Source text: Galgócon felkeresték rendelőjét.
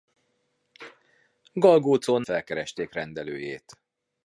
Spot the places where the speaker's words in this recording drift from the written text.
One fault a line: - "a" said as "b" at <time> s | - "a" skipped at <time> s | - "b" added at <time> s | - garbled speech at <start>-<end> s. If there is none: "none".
none